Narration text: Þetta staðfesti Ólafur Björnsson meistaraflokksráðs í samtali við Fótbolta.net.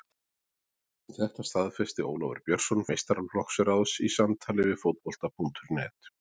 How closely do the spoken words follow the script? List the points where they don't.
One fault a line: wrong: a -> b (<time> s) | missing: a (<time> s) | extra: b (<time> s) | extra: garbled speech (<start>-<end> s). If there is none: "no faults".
no faults